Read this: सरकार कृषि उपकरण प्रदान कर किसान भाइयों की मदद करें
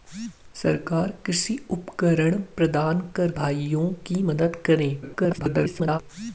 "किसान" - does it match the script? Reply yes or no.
no